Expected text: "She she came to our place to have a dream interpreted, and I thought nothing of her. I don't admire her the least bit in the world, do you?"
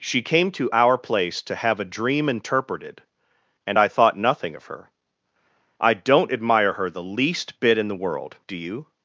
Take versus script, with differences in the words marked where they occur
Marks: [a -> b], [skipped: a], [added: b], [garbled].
"She [skipped: she] came to our place to have a dream interpreted, and I thought nothing of her. I don't admire her the least bit in the world, do you?"